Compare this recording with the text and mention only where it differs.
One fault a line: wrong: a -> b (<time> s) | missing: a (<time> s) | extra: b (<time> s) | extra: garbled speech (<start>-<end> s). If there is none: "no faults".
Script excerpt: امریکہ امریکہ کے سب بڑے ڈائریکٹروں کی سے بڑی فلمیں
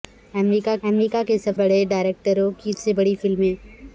no faults